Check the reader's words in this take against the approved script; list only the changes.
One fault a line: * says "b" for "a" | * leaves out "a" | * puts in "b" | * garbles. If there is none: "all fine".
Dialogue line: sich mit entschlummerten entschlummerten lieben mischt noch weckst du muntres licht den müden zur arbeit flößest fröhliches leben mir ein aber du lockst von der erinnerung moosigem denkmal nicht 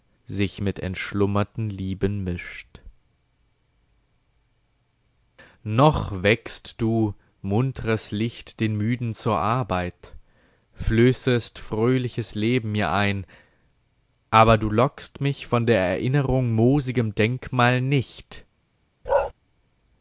* leaves out "entschlummerten"
* puts in "mich"